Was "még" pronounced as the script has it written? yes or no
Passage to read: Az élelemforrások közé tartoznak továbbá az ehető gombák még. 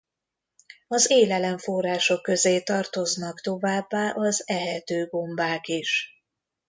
no